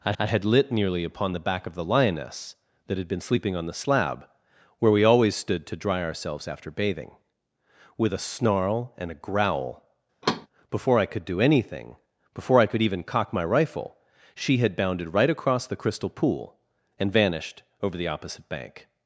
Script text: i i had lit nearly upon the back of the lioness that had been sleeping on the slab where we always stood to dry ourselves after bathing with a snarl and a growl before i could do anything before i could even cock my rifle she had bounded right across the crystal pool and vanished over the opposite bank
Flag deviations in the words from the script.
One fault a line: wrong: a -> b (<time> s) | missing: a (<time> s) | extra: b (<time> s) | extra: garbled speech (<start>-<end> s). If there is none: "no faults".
no faults